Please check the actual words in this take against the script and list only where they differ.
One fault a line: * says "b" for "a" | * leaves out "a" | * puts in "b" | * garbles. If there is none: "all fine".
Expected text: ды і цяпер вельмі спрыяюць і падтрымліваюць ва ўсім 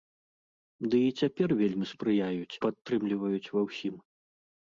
* leaves out "і"